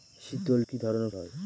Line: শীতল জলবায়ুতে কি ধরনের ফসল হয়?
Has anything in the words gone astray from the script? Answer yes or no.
yes